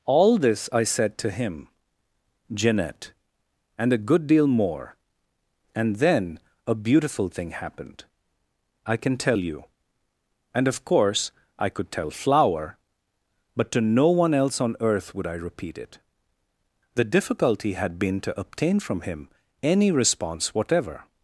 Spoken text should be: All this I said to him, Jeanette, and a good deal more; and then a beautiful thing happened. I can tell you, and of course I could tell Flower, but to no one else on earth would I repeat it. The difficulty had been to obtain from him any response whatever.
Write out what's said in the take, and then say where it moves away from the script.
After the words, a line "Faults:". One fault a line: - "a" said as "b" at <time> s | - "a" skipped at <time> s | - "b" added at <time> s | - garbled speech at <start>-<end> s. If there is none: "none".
All this I said to him, Jeanette, and a good deal more; and then a beautiful thing happened. I can tell you, and of course I could tell Flower, but to no one else on earth would I repeat it. The difficulty had been to obtain from him any response whatever.
Faults:
none